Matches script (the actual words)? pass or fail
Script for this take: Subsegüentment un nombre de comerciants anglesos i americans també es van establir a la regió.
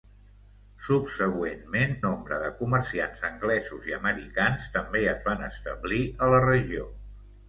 fail